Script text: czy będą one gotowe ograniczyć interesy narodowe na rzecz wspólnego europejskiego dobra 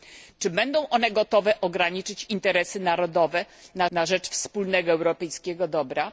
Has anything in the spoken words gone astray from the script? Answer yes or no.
yes